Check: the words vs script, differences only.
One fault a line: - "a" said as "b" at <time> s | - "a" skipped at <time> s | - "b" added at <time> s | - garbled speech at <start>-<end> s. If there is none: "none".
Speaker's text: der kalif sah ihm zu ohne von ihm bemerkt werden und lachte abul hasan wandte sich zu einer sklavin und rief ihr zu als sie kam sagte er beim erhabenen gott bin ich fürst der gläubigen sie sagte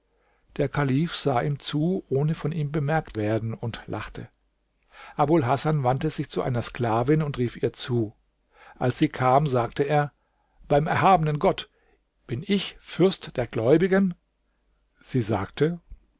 none